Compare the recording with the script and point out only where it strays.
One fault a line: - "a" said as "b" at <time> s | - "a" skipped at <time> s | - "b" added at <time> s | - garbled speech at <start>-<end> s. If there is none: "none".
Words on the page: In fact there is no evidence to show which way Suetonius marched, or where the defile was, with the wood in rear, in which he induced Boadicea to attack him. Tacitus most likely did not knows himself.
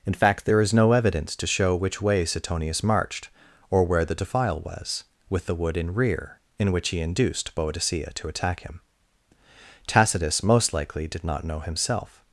- "knows" said as "know" at 11.4 s